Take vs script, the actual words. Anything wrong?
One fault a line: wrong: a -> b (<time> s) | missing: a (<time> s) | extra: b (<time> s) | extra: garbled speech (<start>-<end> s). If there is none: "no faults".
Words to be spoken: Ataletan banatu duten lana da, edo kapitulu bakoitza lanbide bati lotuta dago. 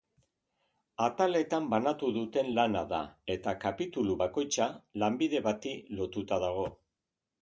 wrong: edo -> eta (3.3 s)